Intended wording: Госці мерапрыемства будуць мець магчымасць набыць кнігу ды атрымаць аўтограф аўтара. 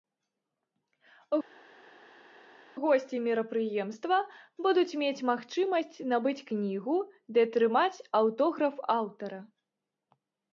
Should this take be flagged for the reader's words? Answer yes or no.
no